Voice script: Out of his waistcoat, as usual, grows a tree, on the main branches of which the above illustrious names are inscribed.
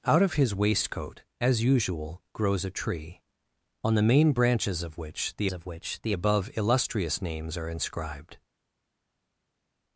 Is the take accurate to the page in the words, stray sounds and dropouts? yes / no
no